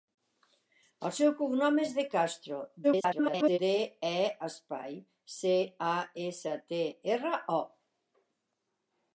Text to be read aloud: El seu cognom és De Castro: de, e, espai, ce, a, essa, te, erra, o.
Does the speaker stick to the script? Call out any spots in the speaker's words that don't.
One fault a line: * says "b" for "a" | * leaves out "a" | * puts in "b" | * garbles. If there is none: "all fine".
* garbles